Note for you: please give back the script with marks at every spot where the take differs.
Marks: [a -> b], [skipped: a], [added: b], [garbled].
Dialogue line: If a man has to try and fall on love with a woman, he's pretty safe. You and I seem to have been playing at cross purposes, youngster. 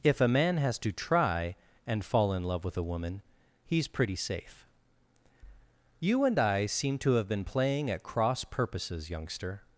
If a man has to try and fall [on -> in] love with a woman, he's pretty safe. You and I seem to have been playing at cross purposes, youngster.